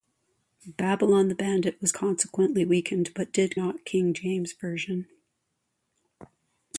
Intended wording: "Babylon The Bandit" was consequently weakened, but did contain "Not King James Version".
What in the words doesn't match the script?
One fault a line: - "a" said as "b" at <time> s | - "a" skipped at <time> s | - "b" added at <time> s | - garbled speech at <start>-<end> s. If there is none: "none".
- "contain" skipped at 3.6 s